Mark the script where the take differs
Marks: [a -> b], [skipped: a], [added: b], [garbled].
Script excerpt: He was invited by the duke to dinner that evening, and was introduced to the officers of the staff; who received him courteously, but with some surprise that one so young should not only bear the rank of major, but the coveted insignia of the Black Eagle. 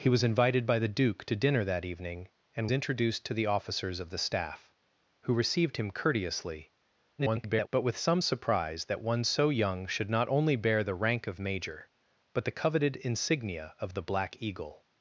He was invited by the duke to dinner that evening, and [skipped: was] introduced to the officers of the staff; who received him courteously, [garbled] but with some surprise that one so young should not only bear the rank of major, but the coveted insignia of the Black Eagle.